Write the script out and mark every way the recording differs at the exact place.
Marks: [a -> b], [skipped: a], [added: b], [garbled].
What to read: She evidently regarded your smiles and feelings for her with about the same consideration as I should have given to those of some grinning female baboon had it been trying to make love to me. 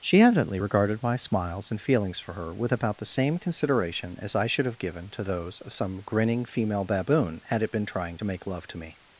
She evidently regarded [your -> my] smiles and feelings for her with about the same consideration as I should have given to those of some grinning female baboon had it been trying to make love to me.